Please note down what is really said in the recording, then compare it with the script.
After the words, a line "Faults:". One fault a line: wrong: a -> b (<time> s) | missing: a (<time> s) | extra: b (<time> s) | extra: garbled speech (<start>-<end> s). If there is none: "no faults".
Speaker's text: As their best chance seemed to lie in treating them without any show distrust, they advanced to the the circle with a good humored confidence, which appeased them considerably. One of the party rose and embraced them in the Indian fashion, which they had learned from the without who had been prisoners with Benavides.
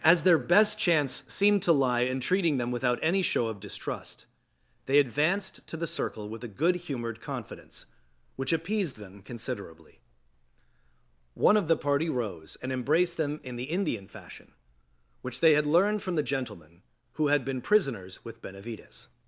As their best chance seemed to lie in treating them without any show of distrust, they advanced to the circle with a good humored confidence, which appeased them considerably. One of the party rose and embraced them in the Indian fashion, which they had learned from the gentlemen who had been prisoners with Benavides.
Faults:
extra: of (3.5 s)
missing: the (5.9 s)
wrong: without -> gentlemen (16.2 s)